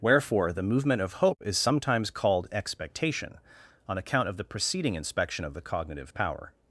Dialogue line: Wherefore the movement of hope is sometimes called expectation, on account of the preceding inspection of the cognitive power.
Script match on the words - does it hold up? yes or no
yes